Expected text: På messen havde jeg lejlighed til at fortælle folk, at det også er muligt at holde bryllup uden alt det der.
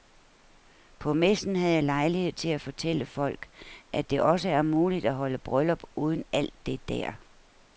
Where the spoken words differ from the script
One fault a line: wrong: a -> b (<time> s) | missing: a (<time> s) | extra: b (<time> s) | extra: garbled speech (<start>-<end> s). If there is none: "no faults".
no faults